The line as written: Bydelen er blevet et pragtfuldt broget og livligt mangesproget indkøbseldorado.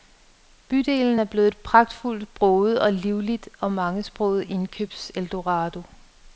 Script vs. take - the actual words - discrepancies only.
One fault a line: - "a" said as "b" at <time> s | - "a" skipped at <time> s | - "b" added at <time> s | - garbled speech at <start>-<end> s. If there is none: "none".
- "og" added at 3.6 s